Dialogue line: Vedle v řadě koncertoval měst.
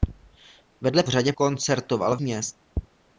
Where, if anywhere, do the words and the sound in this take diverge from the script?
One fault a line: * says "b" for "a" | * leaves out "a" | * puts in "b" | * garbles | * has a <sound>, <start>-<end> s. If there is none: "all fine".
all fine